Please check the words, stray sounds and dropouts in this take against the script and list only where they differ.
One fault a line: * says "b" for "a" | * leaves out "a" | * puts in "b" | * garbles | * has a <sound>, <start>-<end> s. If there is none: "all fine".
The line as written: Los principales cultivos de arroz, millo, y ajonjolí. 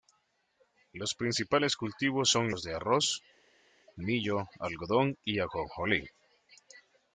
* puts in "son los"
* puts in "algodón"